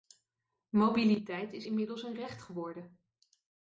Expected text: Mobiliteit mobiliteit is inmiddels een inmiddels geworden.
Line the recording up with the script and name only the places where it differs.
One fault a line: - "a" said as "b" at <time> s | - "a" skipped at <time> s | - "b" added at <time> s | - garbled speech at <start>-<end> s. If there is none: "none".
- "mobiliteit" skipped at 1.5 s
- "inmiddels" said as "recht" at 2.1 s